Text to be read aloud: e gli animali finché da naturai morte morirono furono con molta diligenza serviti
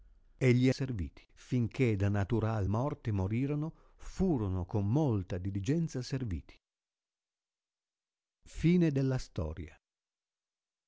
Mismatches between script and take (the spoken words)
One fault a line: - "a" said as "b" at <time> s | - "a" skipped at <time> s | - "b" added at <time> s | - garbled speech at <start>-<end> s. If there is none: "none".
- "animali" said as "serviti" at 0.7 s